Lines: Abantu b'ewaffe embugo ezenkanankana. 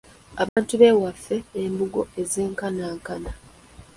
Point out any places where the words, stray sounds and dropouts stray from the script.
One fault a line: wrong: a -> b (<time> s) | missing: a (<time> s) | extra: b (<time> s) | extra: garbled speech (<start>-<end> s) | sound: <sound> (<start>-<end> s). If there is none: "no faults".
sound: dropout (0.5-0.6 s)